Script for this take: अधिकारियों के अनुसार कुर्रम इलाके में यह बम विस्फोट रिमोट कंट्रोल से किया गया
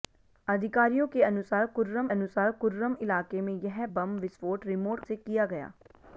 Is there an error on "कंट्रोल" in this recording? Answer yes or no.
yes